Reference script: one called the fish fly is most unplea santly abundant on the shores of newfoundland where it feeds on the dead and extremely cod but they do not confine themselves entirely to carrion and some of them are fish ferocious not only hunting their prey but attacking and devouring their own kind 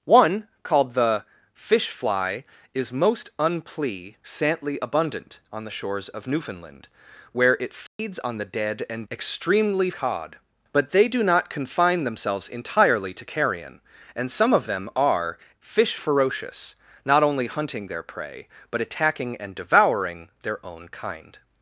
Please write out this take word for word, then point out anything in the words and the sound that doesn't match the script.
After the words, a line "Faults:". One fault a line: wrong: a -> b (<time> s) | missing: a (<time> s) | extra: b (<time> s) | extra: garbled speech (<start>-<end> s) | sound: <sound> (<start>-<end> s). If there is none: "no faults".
one called the fish fly is most unplea santly abundant on the shores of newfoundland where it feeds on the dead and extremely cod but they do not confine themselves entirely to carrion and some of them are fish ferocious not only hunting their prey but attacking and devouring their own kind
Faults:
sound: dropout (7.9-8.0 s)